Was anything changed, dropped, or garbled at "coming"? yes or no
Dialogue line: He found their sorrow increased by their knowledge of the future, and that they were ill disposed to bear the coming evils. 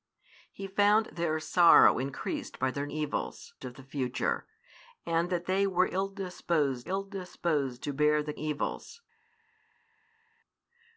yes